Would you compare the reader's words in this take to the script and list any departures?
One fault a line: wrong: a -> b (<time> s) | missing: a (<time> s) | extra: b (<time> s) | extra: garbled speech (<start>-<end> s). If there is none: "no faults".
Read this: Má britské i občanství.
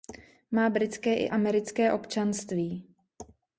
extra: americké (1.3 s)